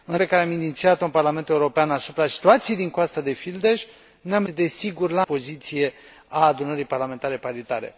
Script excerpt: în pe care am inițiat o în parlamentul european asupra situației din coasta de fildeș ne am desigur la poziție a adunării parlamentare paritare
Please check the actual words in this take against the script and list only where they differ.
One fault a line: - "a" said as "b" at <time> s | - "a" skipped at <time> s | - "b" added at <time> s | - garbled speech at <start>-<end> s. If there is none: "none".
none